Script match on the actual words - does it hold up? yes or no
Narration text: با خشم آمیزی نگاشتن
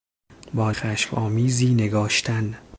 yes